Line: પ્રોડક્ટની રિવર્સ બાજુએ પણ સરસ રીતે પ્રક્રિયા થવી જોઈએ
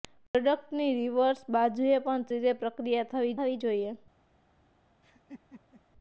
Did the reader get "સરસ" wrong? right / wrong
wrong